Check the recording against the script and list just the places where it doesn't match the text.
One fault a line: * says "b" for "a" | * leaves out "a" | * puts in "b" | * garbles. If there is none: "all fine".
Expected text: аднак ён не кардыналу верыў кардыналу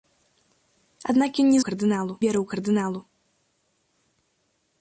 all fine